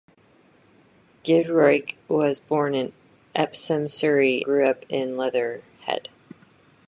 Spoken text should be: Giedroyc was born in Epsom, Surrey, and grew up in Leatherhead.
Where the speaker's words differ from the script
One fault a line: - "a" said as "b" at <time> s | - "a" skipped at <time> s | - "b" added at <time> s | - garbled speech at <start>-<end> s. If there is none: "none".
- "and" skipped at 4.4 s